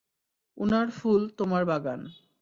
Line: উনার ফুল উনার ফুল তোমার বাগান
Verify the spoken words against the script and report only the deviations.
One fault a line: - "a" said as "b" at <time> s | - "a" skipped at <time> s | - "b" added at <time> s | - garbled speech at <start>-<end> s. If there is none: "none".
- "উনার ফুল" skipped at 1.2 s